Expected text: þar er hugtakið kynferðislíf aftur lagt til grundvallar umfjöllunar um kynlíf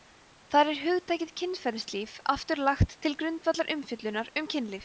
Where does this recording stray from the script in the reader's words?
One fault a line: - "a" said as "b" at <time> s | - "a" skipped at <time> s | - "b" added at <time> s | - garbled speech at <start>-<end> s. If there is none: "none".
none